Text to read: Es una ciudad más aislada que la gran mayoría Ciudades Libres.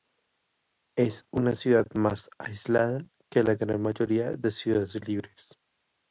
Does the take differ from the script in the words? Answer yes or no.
yes